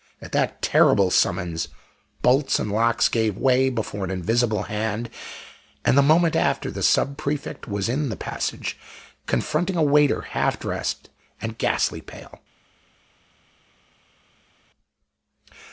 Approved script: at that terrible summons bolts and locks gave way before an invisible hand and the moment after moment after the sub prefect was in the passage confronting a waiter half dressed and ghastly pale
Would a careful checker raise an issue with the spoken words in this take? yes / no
yes